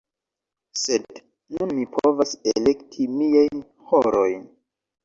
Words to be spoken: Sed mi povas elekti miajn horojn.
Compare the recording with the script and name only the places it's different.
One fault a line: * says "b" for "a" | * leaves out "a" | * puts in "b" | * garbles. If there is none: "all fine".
* puts in "nun"